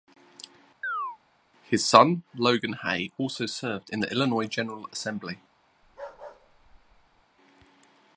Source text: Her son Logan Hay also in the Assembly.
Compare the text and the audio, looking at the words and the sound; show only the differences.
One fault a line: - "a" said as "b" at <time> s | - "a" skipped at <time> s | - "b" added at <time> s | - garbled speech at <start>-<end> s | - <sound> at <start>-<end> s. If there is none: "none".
- chirp at 0.8-1.2 s
- "Her" said as "His" at 1.6 s
- "served" added at 3.5 s
- "Illinois General" added at 4.1 s
- bark at 5.8-7.2 s